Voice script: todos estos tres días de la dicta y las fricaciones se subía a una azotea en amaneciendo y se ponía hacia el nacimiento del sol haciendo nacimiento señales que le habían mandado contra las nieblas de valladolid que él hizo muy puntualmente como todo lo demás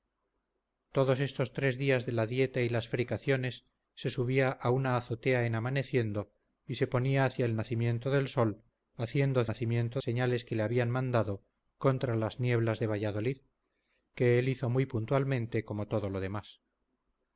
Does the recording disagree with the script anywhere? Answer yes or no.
no